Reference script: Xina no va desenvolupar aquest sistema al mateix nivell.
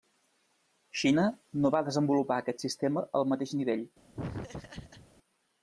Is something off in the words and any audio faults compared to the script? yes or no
yes